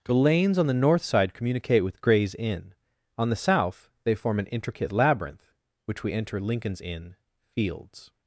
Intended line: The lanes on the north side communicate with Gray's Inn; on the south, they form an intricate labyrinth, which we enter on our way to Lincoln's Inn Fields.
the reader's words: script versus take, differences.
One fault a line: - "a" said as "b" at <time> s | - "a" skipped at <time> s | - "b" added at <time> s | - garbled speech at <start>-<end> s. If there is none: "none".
- "on our way to" skipped at 6.4 s